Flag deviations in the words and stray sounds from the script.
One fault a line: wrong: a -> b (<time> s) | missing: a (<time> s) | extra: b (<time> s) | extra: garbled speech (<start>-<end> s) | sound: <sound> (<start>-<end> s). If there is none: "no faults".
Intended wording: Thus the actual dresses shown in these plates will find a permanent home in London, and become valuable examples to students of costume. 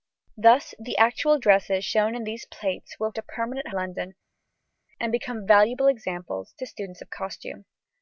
missing: find (3.1 s)
missing: home in (3.7 s)